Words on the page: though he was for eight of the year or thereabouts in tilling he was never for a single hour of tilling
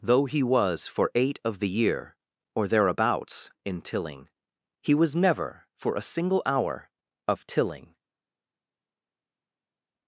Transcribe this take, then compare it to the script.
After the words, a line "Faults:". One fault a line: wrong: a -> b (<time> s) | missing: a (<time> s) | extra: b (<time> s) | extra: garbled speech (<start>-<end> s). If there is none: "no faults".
though he was for eight of the year or thereabouts in tilling he was never for a single hour of tilling
Faults:
no faults